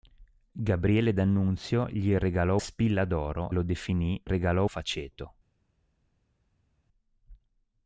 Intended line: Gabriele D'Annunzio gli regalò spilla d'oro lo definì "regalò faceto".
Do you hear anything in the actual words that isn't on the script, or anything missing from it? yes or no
no